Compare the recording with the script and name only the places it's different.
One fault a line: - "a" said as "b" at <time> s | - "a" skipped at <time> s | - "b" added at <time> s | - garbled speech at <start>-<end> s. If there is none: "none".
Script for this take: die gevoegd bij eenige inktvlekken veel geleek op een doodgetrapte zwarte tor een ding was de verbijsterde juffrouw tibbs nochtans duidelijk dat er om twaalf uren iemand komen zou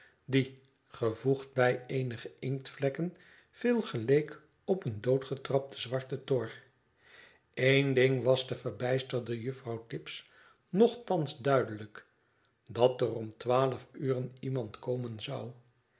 none